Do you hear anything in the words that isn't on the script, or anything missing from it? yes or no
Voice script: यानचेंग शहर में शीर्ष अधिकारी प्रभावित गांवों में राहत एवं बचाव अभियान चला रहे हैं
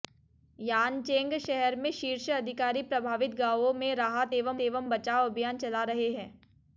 yes